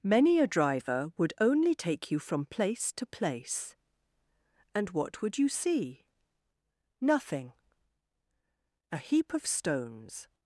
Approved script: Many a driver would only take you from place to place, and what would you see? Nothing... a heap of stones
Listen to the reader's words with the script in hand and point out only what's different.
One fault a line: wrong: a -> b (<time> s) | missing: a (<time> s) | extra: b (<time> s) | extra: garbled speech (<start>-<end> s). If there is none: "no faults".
no faults